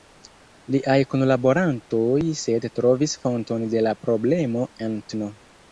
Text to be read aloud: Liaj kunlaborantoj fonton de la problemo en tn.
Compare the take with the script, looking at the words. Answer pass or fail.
fail